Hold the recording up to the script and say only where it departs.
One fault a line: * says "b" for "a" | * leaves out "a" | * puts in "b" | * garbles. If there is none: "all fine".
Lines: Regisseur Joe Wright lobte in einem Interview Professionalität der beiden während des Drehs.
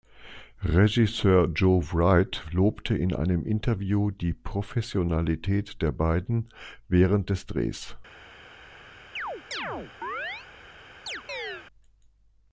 * puts in "die"